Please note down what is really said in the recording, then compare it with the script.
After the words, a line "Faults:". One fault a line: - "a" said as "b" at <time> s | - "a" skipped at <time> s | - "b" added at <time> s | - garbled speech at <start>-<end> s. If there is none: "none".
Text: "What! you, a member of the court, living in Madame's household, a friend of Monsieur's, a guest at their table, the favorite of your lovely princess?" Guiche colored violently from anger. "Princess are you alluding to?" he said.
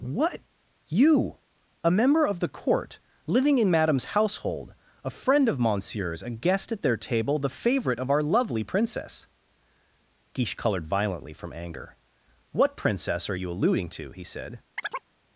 "What! you, a member of the court, living in Madame's household, a friend of Monsieur's, a guest at their table, the favorite of our lovely princess?" Guiche colored violently from anger. "What princess are you alluding to?" he said.
Faults:
- "your" said as "our" at 8.1 s
- "What" added at 12.5 s